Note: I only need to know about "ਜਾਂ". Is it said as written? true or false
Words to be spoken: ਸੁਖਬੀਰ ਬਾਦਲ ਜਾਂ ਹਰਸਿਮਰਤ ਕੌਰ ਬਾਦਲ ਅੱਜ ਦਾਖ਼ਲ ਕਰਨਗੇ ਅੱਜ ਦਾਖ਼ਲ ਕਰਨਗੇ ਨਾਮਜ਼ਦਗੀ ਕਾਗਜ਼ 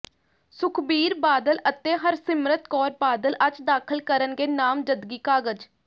false